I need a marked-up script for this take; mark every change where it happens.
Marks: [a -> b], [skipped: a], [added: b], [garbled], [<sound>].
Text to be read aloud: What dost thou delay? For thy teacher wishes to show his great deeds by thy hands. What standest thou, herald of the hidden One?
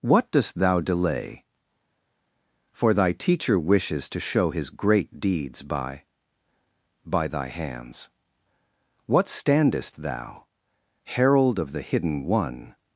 What dost thou delay? For thy teacher wishes to show his great deeds by [added: by] thy hands. What standest thou, herald of the hidden One?